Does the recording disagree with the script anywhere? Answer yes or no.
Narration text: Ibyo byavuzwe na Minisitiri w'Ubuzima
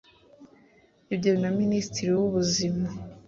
yes